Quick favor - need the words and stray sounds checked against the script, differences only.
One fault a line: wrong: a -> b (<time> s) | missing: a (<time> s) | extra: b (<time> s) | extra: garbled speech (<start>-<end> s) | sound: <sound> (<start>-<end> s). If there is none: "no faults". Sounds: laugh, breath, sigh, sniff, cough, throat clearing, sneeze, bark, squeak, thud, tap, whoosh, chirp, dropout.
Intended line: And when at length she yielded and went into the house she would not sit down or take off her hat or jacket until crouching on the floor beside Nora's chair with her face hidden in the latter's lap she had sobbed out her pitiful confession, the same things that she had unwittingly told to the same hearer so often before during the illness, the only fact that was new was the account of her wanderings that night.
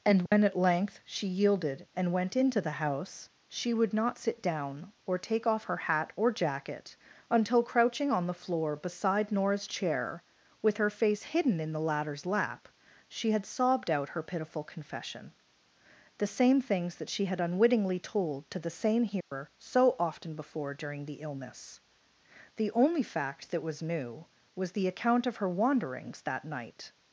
sound: dropout (0.3-0.3 s)
sound: dropout (19.2-19.3 s)